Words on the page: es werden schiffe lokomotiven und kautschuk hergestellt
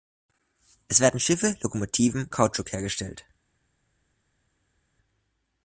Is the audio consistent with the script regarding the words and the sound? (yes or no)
no